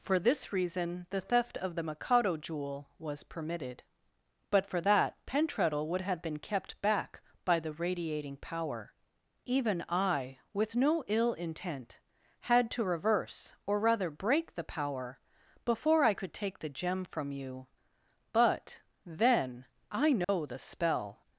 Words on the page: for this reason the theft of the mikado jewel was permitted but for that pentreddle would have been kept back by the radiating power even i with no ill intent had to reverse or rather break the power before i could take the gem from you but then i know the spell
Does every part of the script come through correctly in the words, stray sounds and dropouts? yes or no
no